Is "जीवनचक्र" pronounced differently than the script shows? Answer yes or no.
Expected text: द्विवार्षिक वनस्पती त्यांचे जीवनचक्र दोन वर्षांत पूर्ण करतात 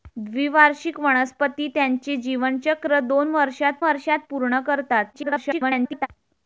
no